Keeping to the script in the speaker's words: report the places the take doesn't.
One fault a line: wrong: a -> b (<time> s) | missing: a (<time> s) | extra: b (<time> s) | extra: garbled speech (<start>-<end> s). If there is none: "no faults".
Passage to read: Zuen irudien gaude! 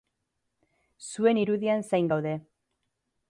extra: zain (1.9 s)